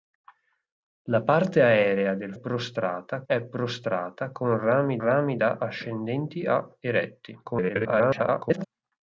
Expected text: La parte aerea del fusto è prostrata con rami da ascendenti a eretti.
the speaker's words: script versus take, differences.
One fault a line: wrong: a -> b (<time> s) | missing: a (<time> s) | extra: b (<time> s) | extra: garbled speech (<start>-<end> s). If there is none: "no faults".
wrong: fusto -> prostrata (2.3 s)
extra: rami (5.0 s)
extra: garbled speech (7.4-8.7 s)